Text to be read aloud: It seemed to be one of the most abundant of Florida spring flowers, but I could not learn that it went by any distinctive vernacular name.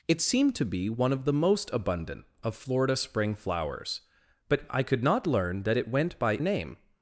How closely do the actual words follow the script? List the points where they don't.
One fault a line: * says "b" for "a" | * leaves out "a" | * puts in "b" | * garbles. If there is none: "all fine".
* leaves out "any distinctive vernacular"